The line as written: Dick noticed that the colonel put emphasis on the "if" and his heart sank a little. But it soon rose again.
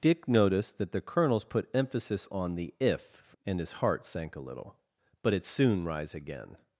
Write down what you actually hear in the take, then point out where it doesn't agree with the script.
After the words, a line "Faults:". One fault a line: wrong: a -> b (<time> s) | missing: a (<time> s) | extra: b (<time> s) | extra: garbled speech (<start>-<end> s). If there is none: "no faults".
Dick noticed that the colonels put emphasis on the "if" and his heart sank a little. But it soon rise again.
Faults:
wrong: colonel -> colonels (1.0 s)
wrong: rose -> rise (5.8 s)